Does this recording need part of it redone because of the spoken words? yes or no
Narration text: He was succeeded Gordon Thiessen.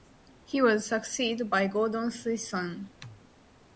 yes